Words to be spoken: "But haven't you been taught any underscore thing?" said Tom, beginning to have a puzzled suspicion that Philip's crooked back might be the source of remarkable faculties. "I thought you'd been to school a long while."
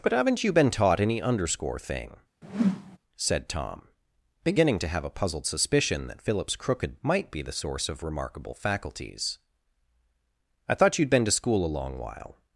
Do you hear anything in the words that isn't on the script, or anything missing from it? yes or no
yes